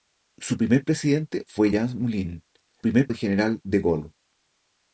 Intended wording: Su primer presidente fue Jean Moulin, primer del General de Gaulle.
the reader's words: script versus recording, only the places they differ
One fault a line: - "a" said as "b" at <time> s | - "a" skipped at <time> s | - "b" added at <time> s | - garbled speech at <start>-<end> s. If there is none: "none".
none